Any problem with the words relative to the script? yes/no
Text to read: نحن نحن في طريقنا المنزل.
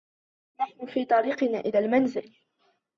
yes